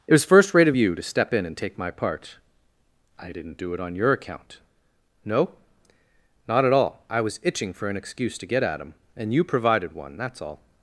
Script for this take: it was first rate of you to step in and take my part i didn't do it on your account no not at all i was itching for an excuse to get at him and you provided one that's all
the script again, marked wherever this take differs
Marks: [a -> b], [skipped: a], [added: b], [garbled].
it was first rate of you to step in and take my part i didn't do it on your account no not at all i was itching for an excuse to get at him and you provided one that's all